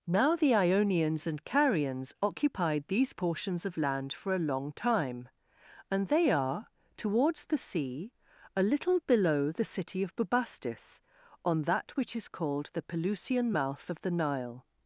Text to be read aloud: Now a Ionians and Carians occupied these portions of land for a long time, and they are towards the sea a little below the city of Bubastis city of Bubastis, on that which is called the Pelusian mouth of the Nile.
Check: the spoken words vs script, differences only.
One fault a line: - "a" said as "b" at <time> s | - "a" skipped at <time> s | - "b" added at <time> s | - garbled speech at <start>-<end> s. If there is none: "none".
- "a" said as "the" at 0.3 s
- "city of Bubastis" skipped at 11.0 s